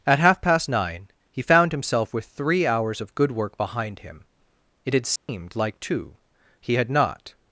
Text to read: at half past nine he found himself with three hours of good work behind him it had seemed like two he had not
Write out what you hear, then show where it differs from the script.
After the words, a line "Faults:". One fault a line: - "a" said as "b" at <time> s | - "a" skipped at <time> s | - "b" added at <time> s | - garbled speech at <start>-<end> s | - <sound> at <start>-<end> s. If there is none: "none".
at half past nine he found himself with three hours of good work behind him it had seemed like two he had not
Faults:
- dropout at 5.2-5.3 s